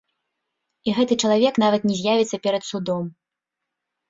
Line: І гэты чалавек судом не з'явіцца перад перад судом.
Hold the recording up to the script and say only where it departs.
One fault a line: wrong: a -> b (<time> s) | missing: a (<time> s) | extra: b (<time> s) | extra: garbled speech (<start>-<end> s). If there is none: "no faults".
wrong: судом -> нават (1.6 s)
missing: перад (2.6 s)